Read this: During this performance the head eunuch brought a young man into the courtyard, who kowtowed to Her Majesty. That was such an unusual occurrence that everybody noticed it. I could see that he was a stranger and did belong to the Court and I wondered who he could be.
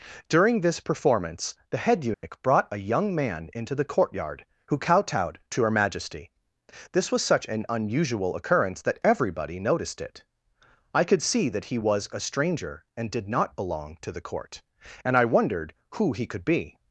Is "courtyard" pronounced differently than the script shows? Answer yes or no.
no